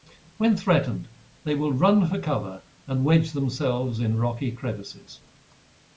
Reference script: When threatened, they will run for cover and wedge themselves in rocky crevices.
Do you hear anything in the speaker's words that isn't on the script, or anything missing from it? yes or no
no